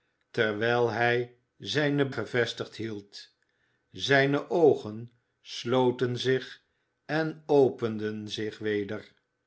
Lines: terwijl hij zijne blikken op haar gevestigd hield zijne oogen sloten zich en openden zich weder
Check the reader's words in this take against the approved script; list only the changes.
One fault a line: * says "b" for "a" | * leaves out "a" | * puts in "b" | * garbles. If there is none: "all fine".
* leaves out "blikken op haar"